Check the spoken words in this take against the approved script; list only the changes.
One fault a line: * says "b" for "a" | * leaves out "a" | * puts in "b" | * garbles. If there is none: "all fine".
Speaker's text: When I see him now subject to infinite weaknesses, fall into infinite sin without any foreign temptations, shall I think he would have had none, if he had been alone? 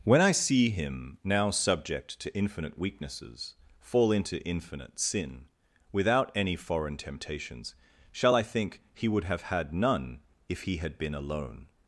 all fine